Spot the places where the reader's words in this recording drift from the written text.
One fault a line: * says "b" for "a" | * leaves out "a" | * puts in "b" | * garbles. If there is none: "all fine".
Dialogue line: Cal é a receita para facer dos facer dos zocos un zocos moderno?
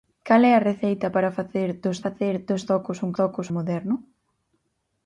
all fine